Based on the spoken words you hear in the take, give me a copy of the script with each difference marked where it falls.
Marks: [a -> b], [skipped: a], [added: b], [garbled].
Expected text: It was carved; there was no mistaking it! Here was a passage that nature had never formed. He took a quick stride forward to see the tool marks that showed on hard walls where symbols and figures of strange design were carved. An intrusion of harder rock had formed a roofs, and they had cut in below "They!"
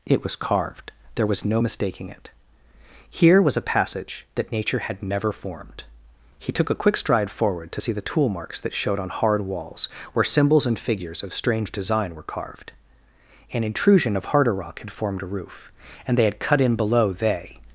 It was carved; there was no mistaking it! Here was a passage that nature had never formed. He took a quick stride forward to see the tool marks that showed on hard walls where symbols and figures of strange design were carved. An intrusion of harder rock had formed a [roofs, -> roof] and they had cut in below "They!"